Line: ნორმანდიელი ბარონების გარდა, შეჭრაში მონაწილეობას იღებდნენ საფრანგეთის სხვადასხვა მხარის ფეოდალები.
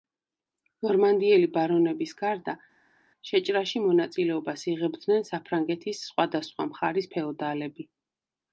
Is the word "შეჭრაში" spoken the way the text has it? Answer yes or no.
yes